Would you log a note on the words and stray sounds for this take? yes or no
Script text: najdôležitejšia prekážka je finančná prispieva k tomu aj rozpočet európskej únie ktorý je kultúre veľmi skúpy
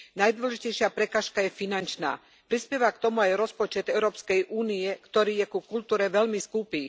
yes